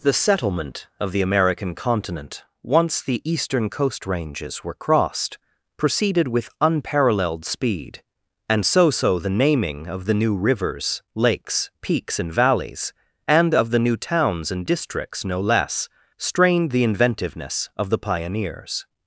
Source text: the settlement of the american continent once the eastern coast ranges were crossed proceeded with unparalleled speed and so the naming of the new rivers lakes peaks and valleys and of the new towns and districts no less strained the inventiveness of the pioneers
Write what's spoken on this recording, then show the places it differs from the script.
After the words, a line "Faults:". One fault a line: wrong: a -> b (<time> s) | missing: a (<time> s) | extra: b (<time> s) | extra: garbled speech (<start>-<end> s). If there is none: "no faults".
the settlement of the american continent once the eastern coast ranges were crossed proceeded with unparalleled speed and so so the naming of the new rivers lakes peaks and valleys and of the new towns and districts no less strained the inventiveness of the pioneers
Faults:
extra: so (8.9 s)